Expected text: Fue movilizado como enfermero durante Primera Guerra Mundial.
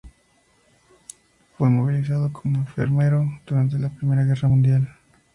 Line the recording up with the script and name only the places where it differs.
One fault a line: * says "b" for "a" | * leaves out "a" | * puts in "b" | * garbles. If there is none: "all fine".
* puts in "la"